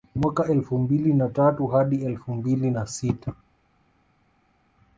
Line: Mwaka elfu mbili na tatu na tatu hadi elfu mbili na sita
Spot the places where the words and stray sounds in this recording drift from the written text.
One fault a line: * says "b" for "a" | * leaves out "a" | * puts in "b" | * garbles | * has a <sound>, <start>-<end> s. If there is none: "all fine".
* leaves out "na tatu"